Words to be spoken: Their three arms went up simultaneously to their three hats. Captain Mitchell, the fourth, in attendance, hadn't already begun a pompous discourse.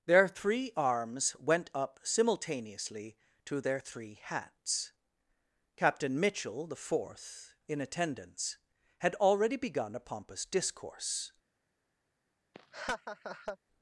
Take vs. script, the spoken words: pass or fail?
fail